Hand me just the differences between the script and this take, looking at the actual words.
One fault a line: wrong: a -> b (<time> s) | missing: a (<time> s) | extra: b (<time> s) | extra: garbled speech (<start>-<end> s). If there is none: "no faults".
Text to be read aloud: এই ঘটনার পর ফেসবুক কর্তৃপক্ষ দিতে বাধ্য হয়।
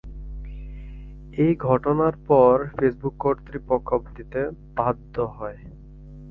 no faults